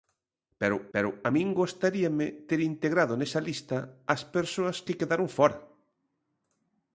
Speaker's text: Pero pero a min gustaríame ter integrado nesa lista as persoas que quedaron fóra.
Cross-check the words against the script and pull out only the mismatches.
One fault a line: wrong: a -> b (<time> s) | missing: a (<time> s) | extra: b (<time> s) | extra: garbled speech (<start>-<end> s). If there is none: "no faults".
no faults